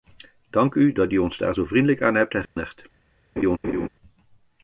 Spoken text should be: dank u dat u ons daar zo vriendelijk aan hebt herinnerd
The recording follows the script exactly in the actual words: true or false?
true